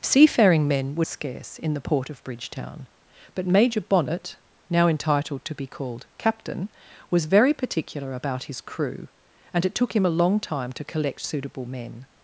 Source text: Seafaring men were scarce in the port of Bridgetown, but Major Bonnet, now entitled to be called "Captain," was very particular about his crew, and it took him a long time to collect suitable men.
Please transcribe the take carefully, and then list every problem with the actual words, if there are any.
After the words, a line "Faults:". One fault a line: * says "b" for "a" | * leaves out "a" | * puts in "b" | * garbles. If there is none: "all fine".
Seafaring men were scarce in the port of Bridgetown, but Major Bonnet, now entitled to be called "Captain," was very particular about his crew, and it took him a long time to collect suitable men.
Faults:
all fine